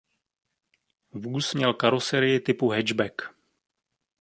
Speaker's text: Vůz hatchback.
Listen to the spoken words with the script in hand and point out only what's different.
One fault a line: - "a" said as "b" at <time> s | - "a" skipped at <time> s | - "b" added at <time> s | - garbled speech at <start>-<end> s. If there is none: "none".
- "měl karoserii typu" added at 1.5 s